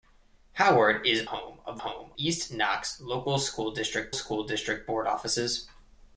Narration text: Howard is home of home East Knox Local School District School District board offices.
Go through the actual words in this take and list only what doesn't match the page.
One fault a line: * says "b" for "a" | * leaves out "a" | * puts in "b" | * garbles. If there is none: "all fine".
all fine